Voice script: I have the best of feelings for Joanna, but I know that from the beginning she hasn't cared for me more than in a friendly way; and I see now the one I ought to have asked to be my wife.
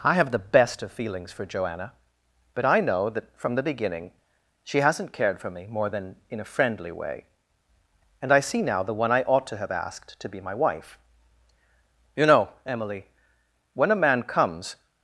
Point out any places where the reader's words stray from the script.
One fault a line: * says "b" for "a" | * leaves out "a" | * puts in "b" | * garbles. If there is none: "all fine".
* puts in "You know Emily when a man comes"